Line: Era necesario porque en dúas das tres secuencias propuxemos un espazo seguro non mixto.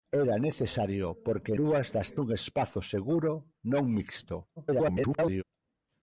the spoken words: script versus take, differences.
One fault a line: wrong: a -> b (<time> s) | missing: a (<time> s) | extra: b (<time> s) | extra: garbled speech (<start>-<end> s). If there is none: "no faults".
missing: en (1.5 s)
missing: tres secuencias propuxemos (2.2 s)
extra: garbled speech (4.6-5.4 s)